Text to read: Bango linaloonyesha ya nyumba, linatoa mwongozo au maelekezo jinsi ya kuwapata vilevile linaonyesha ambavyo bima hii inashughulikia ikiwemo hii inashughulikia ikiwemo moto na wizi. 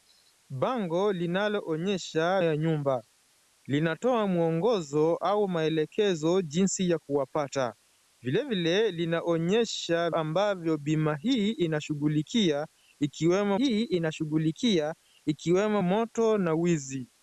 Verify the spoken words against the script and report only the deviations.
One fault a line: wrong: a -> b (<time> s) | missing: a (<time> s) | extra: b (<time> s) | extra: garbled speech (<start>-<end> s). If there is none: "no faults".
no faults